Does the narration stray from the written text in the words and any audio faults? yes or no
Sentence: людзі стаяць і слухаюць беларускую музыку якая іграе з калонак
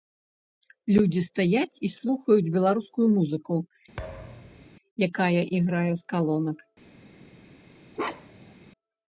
yes